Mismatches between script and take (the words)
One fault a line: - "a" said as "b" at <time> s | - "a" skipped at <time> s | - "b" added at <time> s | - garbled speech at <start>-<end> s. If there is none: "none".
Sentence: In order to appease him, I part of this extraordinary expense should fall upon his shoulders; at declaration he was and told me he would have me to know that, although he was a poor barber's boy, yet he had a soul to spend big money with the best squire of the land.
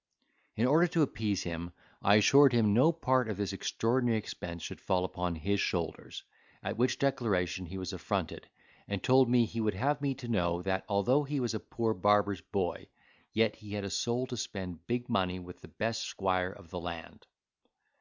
- "assured him no" added at 2.1 s
- "which" added at 6.8 s
- "affronted" added at 7.9 s